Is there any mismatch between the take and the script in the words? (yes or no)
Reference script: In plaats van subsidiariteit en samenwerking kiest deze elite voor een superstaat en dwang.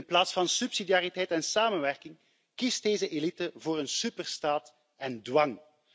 no